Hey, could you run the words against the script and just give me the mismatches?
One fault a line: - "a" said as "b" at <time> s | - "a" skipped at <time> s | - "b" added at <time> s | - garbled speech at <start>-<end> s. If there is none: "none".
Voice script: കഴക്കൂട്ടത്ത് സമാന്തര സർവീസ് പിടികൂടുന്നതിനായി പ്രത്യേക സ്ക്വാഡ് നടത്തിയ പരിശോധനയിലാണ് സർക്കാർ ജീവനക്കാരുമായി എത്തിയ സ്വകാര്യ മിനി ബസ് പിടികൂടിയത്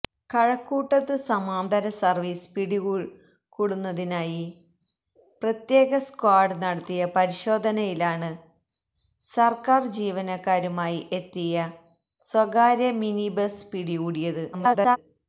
- garbled speech at 14.5-15.0 s